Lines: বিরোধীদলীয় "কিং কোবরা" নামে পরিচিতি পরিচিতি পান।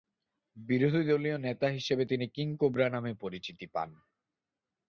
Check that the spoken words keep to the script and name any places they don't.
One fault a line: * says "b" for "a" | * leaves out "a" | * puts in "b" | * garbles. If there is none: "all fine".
* puts in "নেতা হিসেবে তিনি"
* leaves out "পরিচিতি"